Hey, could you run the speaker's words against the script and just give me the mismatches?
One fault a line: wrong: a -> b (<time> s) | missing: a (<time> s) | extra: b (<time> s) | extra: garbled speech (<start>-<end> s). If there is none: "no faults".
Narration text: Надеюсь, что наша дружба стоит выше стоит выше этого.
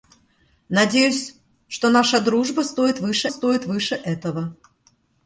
no faults